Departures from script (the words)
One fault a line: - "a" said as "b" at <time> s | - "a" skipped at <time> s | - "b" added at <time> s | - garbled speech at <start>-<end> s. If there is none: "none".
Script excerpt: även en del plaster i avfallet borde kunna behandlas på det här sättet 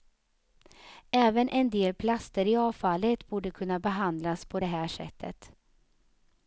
none